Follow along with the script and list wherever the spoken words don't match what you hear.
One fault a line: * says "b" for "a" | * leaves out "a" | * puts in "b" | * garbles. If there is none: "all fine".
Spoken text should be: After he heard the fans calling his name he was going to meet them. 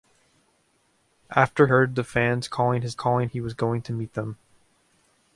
* leaves out "he"
* says "calling" for "name"